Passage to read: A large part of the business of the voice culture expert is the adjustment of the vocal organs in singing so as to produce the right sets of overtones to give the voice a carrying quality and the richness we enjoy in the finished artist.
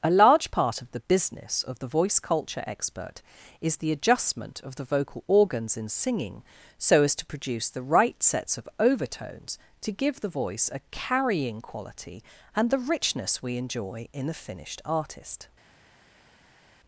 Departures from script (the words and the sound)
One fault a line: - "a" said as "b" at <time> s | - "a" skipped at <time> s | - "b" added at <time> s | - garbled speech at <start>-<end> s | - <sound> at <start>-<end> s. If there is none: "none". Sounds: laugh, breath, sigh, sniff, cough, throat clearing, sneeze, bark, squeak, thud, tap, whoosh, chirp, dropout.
none